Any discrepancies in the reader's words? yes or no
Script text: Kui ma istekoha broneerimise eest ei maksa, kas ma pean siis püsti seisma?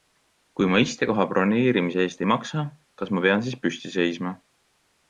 no